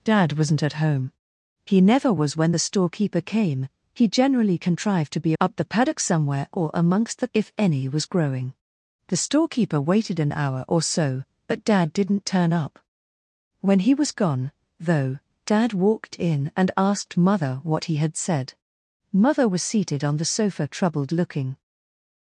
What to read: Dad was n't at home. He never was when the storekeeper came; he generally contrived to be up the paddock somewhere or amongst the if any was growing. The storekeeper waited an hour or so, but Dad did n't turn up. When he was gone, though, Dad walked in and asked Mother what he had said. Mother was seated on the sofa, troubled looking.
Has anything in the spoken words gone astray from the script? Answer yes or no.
no